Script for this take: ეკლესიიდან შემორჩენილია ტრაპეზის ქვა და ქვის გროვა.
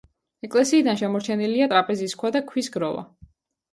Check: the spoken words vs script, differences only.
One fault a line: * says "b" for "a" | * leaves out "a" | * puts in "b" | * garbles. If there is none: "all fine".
all fine